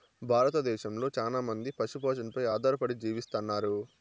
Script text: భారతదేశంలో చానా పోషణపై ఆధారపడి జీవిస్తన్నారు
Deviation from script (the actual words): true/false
true